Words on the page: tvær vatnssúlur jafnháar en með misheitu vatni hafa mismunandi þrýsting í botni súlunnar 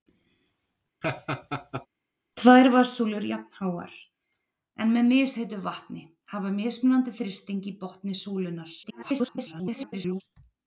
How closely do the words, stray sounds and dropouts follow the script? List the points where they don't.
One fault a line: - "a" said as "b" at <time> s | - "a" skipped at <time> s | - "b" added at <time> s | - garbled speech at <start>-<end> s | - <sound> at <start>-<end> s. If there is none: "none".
- laugh at 1.0-1.9 s
- garbled speech at 8.8-10.2 s